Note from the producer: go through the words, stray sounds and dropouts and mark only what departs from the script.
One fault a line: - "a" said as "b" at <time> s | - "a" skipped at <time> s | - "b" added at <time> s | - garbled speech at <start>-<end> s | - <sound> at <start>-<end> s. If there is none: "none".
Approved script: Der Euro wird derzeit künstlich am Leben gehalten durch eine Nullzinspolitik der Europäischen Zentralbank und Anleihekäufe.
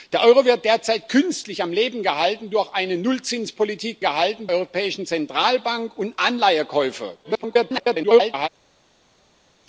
- "der" said as "gehalten" at 4.0 s
- garbled speech at 7.2-8.5 s